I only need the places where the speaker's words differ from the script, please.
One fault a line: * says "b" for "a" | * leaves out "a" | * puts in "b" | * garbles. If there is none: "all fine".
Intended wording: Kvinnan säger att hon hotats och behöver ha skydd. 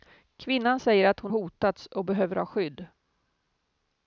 all fine